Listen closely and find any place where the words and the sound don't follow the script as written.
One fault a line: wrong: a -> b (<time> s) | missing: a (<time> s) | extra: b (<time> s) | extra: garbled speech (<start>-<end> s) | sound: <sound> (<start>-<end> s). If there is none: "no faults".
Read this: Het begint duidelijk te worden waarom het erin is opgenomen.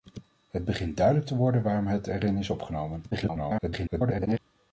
extra: garbled speech (3.1-4.4 s)